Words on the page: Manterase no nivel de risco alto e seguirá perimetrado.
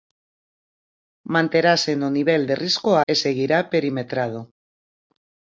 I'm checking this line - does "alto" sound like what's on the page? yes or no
no